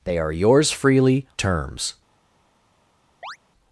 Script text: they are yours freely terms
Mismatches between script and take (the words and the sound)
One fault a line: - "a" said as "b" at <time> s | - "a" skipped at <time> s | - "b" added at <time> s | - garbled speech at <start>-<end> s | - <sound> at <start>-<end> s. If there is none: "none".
- chirp at 3.2-3.4 s